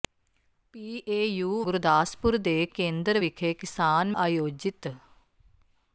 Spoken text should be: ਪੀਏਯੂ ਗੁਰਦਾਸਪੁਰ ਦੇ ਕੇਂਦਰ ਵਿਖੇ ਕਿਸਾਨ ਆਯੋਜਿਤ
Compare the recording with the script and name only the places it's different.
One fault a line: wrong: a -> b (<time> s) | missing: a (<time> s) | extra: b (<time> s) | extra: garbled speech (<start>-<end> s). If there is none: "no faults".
no faults